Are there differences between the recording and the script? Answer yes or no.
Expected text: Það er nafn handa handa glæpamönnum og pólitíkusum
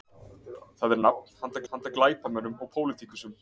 no